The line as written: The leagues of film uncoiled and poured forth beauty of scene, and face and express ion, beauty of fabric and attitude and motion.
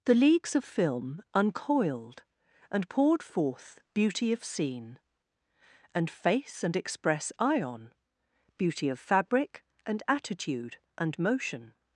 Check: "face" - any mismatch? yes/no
no